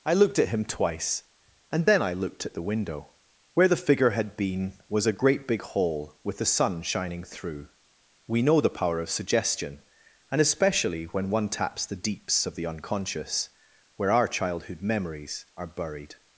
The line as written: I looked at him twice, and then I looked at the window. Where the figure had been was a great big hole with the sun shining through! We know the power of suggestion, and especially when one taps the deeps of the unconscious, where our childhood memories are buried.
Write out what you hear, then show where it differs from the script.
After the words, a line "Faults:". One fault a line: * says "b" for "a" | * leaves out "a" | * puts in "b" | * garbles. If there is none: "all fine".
I looked at him twice, and then I looked at the window. Where the figure had been was a great big hole with the sun shining through! We know the power of suggestion, and especially when one taps the deeps of the unconscious, where our childhood memories are buried.
Faults:
all fine